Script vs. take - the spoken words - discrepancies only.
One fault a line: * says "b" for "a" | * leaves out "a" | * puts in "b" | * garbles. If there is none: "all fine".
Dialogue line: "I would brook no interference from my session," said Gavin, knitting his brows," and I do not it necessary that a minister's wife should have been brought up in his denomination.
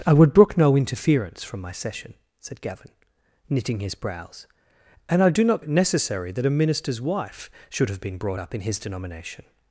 all fine